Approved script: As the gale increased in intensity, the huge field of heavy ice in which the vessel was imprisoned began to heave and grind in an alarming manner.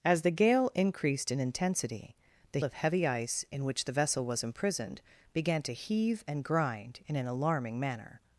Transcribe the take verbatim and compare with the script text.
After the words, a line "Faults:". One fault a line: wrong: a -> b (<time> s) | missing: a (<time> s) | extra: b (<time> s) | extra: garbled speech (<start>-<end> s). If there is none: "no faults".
As the gale increased in intensity, the of heavy ice in which the vessel was imprisoned began to heave and grind in an alarming manner.
Faults:
missing: huge field (2.6 s)